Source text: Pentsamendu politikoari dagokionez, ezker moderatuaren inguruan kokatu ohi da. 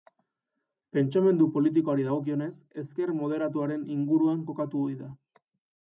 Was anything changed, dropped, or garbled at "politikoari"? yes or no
no